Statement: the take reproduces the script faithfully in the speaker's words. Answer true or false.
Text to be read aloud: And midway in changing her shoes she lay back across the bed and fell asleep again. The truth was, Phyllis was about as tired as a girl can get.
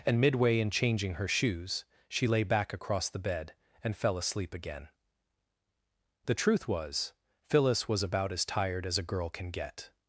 true